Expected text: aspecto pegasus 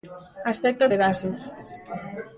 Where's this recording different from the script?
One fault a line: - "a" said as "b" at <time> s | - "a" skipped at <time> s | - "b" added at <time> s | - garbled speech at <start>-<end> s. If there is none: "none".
none